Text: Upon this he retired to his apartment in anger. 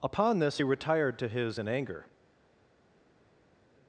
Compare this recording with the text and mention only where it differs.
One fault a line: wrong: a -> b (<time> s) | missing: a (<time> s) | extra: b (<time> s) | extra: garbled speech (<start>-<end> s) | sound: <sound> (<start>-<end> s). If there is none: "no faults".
missing: apartment (1.6 s)